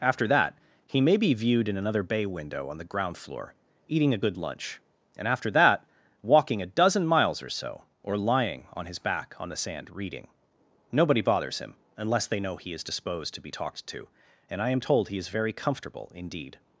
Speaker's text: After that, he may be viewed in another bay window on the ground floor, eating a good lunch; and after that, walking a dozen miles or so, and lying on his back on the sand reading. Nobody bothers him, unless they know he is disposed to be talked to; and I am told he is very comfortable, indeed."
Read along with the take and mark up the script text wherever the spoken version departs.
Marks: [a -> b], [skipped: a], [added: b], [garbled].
After that, he may be viewed in another bay window on the ground floor, eating a good lunch; and after that, walking a dozen miles or so, [and -> or] lying on his back on the sand reading. Nobody bothers him, unless they know he is disposed to be talked to; and I am told he is very comfortable, indeed."